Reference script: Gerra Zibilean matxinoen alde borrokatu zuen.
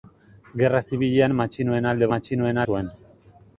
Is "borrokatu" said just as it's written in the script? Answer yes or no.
no